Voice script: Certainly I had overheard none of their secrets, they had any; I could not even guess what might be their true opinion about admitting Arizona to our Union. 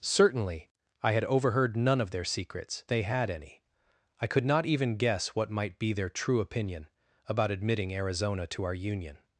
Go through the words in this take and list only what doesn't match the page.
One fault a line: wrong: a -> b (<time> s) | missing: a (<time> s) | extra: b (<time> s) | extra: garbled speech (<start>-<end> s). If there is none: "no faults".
no faults